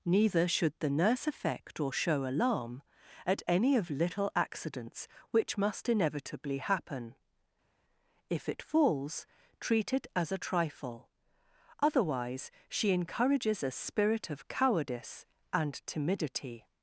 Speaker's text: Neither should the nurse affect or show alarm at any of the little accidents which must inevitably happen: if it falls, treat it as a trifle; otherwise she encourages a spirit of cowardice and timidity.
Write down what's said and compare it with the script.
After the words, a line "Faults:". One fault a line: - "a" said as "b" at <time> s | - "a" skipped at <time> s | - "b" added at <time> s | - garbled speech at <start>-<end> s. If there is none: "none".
Neither should the nurse affect or show alarm at any of little accidents which must inevitably happen: if it falls, treat it as a trifle; otherwise she encourages a spirit of cowardice and timidity.
Faults:
- "the" skipped at 3.9 s